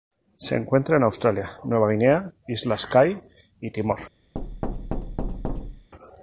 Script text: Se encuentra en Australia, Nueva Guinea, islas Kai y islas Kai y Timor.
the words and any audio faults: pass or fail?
fail